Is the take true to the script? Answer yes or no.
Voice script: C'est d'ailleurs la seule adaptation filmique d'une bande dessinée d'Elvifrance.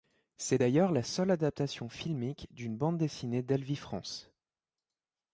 yes